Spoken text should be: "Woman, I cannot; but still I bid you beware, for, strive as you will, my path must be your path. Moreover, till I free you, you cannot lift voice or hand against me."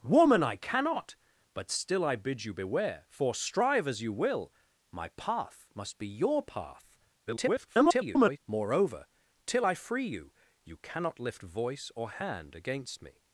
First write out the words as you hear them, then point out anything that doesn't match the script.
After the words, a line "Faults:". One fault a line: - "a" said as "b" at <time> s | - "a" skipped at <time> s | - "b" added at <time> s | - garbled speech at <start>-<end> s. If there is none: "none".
"Woman, I cannot; but still I bid you beware, for, strive as you will, my path must be your path. [garbled] Moreover, till I free you, you cannot lift voice or hand against me."
Faults:
- garbled speech at 7.3-8.4 s